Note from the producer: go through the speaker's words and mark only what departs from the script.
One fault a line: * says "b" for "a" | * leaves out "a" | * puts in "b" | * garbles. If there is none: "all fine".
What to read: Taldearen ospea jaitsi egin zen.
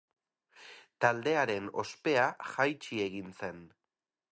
all fine